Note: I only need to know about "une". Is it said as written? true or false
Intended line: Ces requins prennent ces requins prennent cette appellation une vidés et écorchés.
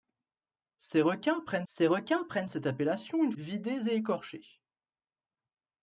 true